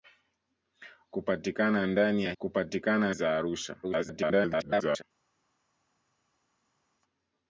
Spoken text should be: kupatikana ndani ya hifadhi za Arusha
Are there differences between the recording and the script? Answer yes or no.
yes